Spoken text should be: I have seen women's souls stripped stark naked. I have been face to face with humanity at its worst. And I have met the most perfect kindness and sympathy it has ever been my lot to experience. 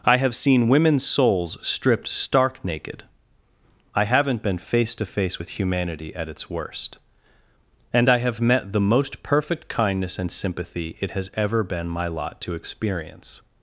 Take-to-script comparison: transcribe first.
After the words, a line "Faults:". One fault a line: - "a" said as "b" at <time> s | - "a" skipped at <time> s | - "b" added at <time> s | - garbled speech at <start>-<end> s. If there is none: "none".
I have seen women's souls stripped stark naked. I haven't been face to face with humanity at its worst. And I have met the most perfect kindness and sympathy it has ever been my lot to experience.
Faults:
- "have" said as "haven't" at 4.0 s